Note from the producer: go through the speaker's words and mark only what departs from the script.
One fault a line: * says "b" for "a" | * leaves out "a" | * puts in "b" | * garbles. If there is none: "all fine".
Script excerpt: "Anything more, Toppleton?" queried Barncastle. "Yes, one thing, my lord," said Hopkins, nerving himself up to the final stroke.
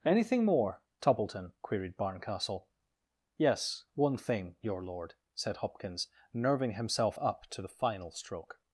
* says "your" for "my"